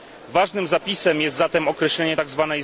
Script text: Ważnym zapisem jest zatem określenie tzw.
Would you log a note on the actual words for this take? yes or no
no